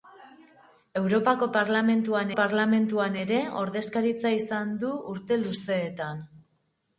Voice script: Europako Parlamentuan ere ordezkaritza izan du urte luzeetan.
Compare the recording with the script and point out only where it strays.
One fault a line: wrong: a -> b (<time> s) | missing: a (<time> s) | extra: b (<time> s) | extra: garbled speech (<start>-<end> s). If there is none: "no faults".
extra: Parlamentuan (2.4 s)